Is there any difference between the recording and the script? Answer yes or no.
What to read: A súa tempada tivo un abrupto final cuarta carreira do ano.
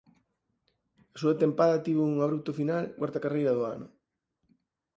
no